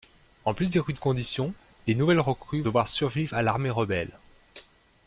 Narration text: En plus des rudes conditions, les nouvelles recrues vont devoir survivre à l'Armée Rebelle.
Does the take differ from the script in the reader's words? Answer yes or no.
yes